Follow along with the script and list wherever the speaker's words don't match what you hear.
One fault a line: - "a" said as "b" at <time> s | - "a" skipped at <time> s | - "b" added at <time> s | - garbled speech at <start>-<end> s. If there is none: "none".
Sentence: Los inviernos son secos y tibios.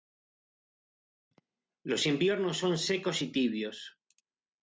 none